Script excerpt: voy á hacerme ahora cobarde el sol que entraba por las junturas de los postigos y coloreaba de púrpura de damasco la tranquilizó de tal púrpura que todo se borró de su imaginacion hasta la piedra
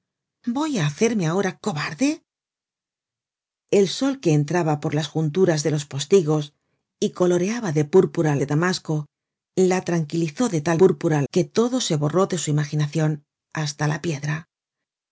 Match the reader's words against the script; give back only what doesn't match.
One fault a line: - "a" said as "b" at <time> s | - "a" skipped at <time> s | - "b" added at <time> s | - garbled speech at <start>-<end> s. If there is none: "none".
none